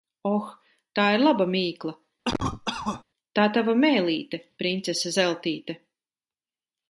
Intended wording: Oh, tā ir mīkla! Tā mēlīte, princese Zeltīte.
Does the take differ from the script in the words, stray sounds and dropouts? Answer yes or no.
yes